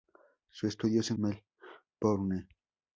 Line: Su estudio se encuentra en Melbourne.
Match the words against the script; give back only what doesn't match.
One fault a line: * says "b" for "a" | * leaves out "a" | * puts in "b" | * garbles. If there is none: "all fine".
* leaves out "encuentra en"